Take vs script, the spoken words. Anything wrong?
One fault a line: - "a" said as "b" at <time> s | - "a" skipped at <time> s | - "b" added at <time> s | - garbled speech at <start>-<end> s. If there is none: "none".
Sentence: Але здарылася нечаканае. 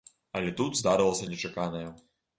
- "тут" added at 0.6 s